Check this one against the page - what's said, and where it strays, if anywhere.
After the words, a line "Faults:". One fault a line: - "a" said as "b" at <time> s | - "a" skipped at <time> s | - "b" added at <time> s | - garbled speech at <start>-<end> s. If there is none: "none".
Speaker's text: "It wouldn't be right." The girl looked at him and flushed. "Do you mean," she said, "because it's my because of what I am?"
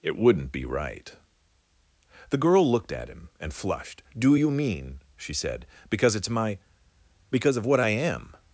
"It wouldn't be right." The girl looked at him and flushed. "Do you mean," she said, "because it's my because of what I am?"
Faults:
none